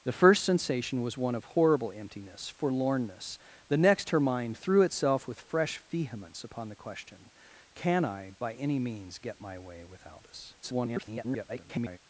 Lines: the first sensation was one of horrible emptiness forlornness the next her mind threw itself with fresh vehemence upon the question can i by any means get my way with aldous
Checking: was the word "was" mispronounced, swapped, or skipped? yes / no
no